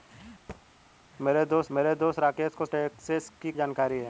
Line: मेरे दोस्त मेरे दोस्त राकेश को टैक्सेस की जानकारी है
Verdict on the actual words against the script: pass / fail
pass